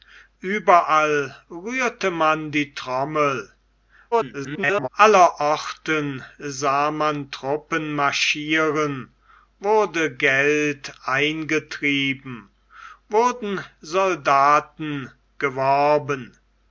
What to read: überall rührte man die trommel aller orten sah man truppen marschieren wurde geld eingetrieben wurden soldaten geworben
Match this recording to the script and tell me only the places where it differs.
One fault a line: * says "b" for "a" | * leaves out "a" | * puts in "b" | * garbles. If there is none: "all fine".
* garbles